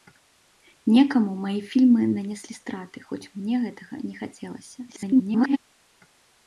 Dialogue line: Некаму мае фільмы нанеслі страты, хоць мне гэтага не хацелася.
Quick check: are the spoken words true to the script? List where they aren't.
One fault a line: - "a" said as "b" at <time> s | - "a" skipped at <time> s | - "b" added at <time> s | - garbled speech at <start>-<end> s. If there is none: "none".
- garbled speech at 4.9-5.6 s